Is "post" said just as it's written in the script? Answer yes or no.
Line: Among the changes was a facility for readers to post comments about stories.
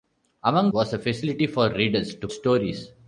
no